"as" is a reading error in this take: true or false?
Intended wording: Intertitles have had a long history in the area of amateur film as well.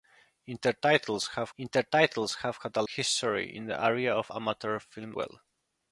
true